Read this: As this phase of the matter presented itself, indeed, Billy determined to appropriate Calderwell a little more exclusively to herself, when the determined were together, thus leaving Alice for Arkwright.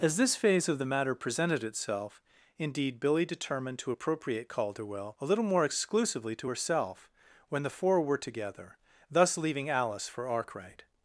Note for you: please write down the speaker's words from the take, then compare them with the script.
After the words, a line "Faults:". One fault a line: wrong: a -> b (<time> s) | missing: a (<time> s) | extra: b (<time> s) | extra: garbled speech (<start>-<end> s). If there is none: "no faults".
As this phase of the matter presented itself, indeed, Billy determined to appropriate Calderwell a little more exclusively to herself, when the four were together, thus leaving Alice for Arkwright.
Faults:
wrong: determined -> four (7.7 s)